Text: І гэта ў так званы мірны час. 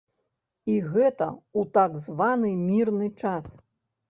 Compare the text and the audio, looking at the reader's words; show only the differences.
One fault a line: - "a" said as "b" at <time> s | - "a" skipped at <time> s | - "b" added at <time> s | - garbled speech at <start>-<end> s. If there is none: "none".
none